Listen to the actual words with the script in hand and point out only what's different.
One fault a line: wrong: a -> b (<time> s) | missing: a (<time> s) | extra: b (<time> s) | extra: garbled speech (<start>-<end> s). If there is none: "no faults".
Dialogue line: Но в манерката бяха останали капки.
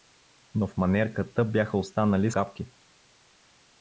no faults